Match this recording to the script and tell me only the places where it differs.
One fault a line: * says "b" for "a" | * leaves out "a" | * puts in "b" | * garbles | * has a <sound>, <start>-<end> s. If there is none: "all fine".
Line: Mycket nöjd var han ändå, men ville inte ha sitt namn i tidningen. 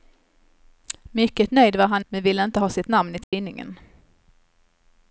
* leaves out "ändå"
* has a dropout, 3.2-3.3 s